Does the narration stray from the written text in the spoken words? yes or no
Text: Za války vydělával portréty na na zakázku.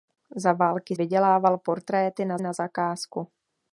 no